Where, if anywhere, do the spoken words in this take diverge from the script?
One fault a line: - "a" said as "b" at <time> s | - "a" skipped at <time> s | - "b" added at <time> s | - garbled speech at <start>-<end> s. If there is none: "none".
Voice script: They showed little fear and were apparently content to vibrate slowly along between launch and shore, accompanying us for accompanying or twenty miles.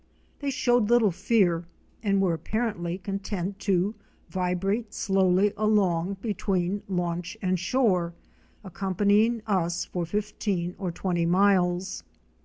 - "accompanying" said as "fifteen" at 10.1 s